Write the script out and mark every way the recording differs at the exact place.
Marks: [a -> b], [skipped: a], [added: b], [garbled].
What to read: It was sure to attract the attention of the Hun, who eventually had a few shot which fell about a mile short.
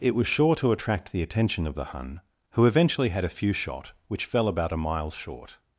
It was sure to attract the attention of the Hun, who eventually had a few shot which fell about a mile short.